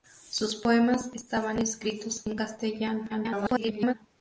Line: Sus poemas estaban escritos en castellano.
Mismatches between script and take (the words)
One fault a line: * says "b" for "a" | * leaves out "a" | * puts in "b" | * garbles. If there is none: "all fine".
* garbles